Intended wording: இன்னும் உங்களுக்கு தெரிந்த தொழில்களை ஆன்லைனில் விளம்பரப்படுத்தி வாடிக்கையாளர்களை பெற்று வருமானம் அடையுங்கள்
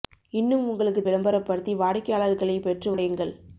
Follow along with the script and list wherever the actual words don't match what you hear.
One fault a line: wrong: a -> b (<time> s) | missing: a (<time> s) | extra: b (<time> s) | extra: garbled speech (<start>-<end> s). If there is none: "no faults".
missing: தெரிந்த தொழில்களை ஆன்லைனில் (1.0 s)
missing: வருமானம் (2.9 s)